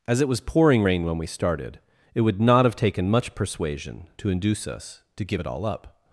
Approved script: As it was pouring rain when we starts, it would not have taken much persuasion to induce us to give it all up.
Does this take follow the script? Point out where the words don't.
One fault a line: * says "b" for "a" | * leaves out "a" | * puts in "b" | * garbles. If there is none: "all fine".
* says "started" for "starts"